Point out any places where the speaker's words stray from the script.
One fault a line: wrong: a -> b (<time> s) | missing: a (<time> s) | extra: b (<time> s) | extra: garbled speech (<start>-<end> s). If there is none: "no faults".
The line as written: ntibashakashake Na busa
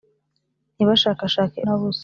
no faults